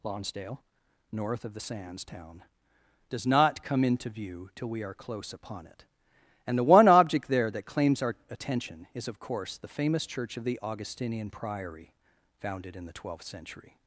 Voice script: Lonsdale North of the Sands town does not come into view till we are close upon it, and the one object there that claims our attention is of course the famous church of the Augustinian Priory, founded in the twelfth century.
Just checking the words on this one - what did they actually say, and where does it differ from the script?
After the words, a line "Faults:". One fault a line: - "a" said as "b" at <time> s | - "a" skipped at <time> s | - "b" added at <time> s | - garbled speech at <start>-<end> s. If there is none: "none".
Lonsdale North of the Sands town does not come into view till we are close upon it, and the one object there that claims our attention is of course the famous church of the Augustinian Priory, founded in the twelfth century.
Faults:
none